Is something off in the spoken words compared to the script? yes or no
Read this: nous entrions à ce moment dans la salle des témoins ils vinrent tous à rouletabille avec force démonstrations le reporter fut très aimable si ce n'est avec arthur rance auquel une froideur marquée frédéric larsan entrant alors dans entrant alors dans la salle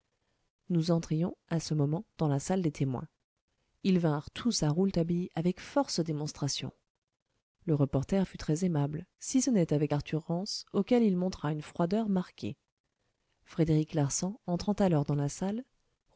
yes